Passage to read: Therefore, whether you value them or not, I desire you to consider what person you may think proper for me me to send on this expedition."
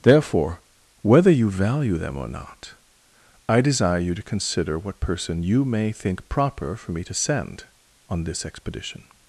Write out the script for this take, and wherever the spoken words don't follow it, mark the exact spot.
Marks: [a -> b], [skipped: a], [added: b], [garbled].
Therefore, whether you value them or not, I desire you to consider what person you may think proper for me [skipped: me] to send on this expedition."